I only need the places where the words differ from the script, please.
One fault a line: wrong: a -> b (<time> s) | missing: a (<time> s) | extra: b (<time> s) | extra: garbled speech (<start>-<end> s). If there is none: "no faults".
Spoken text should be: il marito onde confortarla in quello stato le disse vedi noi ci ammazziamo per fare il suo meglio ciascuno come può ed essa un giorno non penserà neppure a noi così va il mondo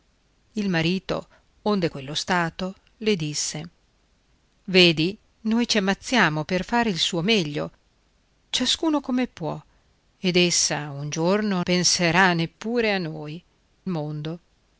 missing: confortarla in (1.9 s)
missing: non (11.6 s)
missing: così va il (13.4 s)